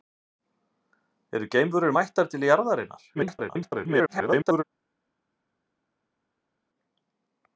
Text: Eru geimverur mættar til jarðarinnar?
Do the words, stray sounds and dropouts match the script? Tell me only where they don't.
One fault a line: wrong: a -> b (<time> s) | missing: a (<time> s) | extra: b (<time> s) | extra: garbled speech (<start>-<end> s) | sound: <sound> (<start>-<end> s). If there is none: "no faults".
extra: garbled speech (3.1-4.6 s)